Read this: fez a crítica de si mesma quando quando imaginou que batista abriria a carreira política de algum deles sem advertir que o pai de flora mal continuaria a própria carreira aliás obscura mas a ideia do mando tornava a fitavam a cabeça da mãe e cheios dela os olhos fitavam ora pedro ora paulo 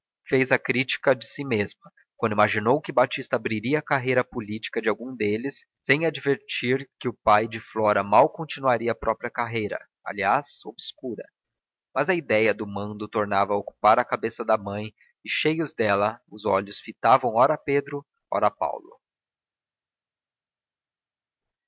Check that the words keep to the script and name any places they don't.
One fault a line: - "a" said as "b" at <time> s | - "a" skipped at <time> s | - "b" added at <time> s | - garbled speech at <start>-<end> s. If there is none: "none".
- "quando" skipped at 2.3 s
- "fitavam" said as "ocupar" at 13.6 s